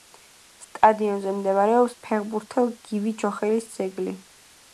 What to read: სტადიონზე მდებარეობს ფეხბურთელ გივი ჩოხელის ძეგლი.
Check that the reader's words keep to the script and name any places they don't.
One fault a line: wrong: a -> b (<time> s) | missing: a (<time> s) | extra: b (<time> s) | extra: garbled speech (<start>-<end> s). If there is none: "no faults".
no faults